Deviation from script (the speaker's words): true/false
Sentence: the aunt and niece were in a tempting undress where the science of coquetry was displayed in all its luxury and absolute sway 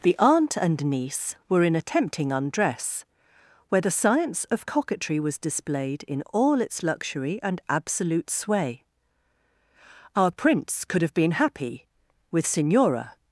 true